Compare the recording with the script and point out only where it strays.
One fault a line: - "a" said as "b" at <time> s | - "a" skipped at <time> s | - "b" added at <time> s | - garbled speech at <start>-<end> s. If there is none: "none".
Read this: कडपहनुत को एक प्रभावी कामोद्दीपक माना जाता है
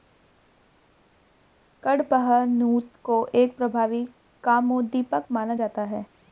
none